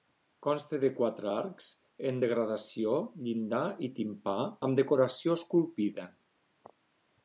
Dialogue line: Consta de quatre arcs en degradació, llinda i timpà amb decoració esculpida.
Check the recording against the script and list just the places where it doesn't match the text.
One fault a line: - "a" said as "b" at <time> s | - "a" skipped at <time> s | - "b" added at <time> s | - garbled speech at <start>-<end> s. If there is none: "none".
none